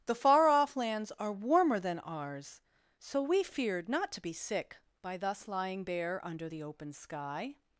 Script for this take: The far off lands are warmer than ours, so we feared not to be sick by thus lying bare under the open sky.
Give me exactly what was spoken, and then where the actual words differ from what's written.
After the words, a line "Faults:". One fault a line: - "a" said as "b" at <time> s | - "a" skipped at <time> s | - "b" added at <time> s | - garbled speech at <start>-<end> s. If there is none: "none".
The far off lands are warmer than ours, so we feared not to be sick by thus lying bare under the open sky.
Faults:
none